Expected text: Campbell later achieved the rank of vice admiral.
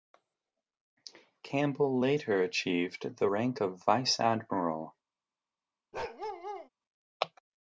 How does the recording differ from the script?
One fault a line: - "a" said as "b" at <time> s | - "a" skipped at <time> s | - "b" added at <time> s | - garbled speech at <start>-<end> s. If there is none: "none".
none